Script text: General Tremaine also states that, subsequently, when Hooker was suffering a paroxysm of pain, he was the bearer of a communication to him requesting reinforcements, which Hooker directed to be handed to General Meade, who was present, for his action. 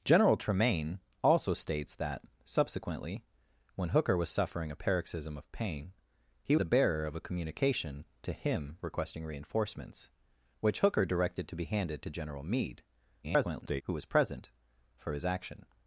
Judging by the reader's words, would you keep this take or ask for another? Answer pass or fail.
fail